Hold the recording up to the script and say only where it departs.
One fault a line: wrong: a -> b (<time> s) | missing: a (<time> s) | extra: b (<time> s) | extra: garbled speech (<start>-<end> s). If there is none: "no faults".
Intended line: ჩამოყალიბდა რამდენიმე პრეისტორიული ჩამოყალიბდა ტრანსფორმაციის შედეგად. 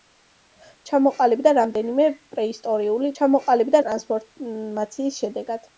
no faults